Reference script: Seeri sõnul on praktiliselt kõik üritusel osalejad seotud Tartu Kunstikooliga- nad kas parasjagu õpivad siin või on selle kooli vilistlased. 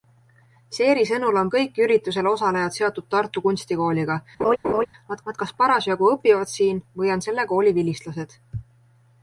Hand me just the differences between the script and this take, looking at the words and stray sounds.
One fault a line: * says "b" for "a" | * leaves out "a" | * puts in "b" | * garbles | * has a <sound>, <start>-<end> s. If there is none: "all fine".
* leaves out "praktiliselt"
* has a laugh, 4.4-4.9 s
* puts in "nad"